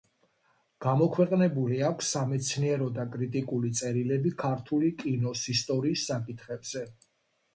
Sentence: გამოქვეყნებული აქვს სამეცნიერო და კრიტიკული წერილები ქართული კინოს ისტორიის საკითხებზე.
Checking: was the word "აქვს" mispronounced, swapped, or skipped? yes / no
no